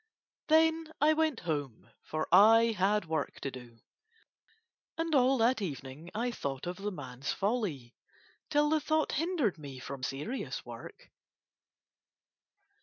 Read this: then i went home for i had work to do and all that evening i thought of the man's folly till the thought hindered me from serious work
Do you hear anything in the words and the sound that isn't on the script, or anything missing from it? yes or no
no